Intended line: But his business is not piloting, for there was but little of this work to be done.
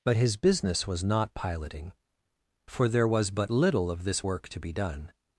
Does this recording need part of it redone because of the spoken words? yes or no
yes